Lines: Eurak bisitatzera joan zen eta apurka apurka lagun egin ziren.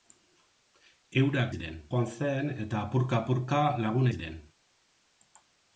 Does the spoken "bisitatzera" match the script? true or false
false